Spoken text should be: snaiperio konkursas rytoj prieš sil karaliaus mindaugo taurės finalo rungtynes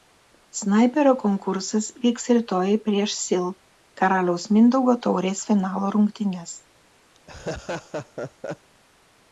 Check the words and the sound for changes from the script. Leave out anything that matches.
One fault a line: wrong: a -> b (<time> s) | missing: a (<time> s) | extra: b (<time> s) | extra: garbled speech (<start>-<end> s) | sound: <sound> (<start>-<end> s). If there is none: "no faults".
extra: vyks (2.1 s)
sound: laugh (7.1-8.7 s)